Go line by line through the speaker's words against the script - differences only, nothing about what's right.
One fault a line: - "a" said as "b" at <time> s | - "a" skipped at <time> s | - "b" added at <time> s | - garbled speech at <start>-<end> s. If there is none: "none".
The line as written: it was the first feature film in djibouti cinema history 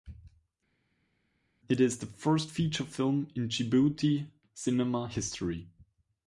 - "was" said as "is" at 1.8 s